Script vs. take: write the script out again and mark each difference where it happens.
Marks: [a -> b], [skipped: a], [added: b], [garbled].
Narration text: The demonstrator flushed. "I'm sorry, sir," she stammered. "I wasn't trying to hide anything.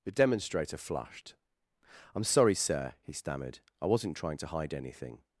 The demonstrator flushed. "I'm sorry, sir," [she -> he] stammered. "I wasn't trying to hide anything.